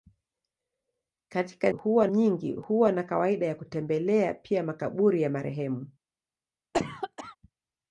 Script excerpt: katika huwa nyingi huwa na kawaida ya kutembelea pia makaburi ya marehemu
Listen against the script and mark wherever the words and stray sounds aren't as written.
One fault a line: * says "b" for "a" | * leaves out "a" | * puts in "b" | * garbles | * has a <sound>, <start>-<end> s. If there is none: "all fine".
* has a cough, 6.7-7.4 s